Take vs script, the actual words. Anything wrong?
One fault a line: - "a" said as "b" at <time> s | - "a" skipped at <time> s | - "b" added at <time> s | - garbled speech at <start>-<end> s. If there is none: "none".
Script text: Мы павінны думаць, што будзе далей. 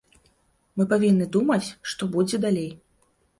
none